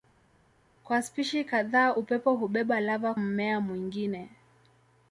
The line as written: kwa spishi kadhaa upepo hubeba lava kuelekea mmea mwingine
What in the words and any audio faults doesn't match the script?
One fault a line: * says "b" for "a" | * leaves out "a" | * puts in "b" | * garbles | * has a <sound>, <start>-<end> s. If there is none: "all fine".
* leaves out "kuelekea"